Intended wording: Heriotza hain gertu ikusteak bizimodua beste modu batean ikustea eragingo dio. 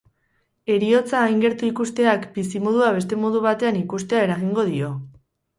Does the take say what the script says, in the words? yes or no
yes